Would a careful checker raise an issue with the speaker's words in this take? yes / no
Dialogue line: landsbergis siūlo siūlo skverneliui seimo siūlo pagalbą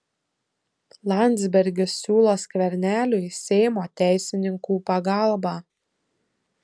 yes